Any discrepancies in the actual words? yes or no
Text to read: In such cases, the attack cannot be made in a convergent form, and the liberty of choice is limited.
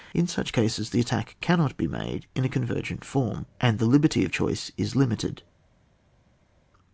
no